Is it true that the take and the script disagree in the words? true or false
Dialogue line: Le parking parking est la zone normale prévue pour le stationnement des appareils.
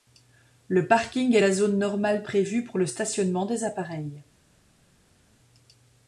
true